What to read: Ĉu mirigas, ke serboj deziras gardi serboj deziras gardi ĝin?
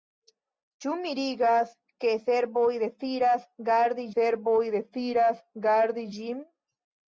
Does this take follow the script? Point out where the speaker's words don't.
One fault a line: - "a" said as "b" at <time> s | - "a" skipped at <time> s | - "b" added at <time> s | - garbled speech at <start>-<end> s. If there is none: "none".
none